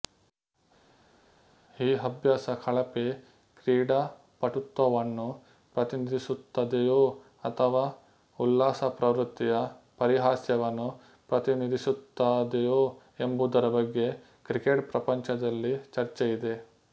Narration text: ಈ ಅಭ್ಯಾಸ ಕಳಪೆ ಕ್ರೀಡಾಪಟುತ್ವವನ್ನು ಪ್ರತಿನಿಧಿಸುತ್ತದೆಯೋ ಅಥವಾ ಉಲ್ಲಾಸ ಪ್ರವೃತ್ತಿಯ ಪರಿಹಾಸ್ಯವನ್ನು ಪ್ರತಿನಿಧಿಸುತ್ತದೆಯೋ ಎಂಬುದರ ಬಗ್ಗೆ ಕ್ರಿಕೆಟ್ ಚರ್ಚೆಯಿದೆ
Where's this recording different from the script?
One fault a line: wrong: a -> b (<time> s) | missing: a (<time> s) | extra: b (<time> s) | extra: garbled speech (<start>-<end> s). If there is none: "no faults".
extra: ಪ್ರಪಂಚದಲ್ಲಿ (14.9 s)